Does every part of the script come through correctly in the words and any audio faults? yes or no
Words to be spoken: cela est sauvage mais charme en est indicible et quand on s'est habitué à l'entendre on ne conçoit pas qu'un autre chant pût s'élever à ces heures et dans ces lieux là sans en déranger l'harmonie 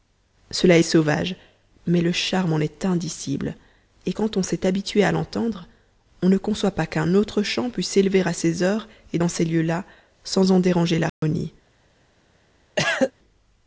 no